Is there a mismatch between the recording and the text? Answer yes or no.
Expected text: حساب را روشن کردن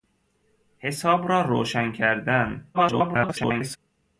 yes